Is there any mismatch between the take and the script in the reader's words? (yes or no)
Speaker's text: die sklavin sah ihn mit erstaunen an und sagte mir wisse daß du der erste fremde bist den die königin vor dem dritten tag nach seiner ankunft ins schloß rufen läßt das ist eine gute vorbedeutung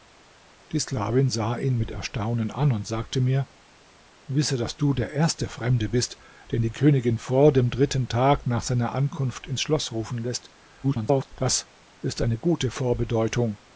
yes